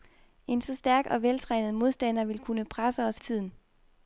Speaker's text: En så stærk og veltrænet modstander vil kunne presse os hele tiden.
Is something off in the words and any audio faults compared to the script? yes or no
yes